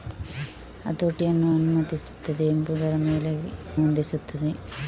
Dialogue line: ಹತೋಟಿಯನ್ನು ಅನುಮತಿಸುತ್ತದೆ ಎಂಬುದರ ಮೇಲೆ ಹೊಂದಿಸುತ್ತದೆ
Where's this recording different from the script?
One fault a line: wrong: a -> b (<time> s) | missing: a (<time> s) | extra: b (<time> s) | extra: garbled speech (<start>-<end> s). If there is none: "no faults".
no faults